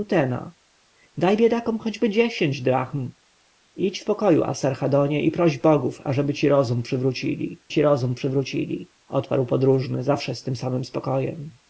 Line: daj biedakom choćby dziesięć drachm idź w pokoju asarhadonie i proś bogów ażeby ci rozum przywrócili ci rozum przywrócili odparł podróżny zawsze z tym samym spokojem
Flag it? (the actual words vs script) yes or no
no